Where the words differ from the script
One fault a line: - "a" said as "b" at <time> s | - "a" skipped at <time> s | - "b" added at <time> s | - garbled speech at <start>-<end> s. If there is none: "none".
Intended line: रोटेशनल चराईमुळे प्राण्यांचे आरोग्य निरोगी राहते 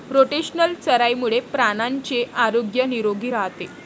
none